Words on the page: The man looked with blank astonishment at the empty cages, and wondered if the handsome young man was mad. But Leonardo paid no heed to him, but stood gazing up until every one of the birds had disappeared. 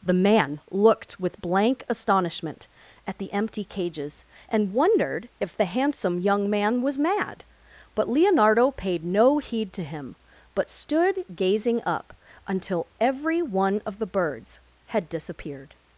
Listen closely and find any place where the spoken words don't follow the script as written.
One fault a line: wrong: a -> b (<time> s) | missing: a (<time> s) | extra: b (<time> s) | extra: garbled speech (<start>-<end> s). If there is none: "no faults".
no faults